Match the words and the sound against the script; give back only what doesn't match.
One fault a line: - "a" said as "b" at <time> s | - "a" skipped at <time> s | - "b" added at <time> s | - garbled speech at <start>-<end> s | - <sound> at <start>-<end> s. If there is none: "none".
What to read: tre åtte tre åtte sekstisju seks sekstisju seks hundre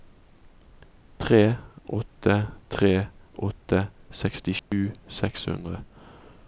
- dropout at 4.6-4.7 s
- "sekstisju seks" skipped at 5.5 s